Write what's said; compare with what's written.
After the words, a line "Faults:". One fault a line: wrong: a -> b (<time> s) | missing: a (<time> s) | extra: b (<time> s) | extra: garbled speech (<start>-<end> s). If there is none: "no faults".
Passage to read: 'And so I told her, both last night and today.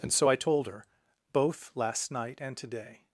'And so I told her, both last night and today.
Faults:
no faults